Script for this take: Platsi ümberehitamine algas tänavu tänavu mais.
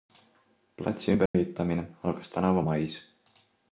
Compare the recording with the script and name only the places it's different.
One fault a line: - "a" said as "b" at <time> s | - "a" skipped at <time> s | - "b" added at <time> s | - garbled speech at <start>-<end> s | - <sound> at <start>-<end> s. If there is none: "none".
- dropout at 1.3-1.3 s
- "tänavu" skipped at 2.6 s